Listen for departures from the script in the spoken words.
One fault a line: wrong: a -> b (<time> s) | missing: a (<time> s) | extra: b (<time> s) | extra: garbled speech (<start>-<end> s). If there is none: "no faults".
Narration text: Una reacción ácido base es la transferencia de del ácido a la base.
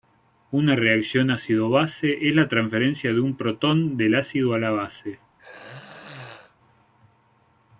extra: un protón (3.2 s)